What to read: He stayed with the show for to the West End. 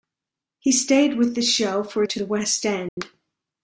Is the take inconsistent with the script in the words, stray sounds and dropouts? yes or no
yes